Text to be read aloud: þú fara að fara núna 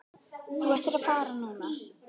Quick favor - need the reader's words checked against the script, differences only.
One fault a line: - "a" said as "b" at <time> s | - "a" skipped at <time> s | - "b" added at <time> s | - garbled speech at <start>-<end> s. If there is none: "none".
- "fara" said as "ættir" at 0.7 s